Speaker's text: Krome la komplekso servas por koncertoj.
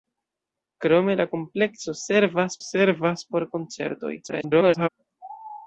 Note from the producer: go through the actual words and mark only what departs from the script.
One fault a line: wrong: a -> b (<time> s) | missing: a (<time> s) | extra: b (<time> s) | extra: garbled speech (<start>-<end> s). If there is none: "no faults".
extra: servas (2.7 s)
extra: garbled speech (4.2-4.9 s)